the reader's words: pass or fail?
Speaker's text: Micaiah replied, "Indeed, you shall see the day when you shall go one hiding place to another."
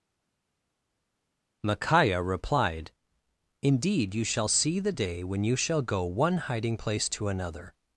pass